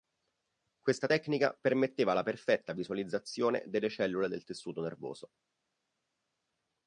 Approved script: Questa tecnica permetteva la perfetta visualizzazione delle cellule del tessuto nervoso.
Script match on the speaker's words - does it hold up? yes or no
yes